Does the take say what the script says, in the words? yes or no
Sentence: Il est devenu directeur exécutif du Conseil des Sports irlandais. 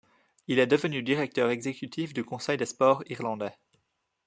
yes